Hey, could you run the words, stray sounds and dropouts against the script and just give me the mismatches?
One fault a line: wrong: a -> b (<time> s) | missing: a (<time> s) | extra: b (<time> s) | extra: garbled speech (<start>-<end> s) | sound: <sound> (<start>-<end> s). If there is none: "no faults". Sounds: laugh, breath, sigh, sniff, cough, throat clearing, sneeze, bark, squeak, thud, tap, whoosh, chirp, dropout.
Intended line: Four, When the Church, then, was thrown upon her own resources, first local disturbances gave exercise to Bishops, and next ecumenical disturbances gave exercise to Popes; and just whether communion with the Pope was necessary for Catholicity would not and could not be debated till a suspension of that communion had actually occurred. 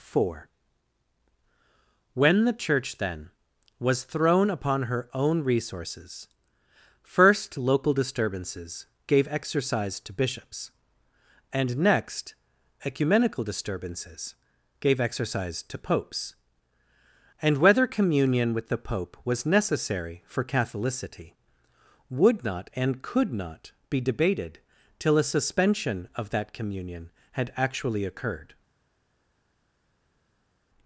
missing: just (17.6 s)